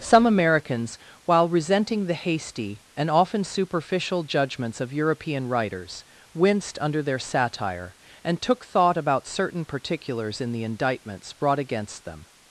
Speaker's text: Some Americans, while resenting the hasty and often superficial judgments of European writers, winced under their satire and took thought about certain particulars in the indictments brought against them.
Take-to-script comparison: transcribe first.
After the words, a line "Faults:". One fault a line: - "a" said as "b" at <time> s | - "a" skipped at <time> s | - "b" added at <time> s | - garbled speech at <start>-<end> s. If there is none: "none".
Some Americans, while resenting the hasty and often superficial judgments of European writers, winced under their satire and took thought about certain particulars in the indictments brought against them.
Faults:
none